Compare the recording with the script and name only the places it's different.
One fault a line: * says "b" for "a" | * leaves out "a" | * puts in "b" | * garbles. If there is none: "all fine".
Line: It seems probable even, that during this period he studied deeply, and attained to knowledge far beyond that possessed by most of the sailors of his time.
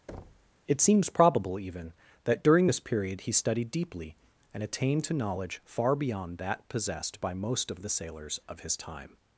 all fine